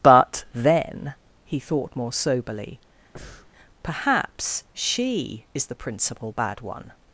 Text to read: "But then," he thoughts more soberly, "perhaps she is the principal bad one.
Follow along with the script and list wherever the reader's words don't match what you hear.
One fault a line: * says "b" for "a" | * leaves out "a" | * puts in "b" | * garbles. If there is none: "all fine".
* says "thought" for "thoughts"